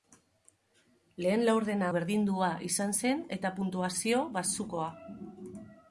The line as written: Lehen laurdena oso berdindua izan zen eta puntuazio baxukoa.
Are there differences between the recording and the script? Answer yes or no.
yes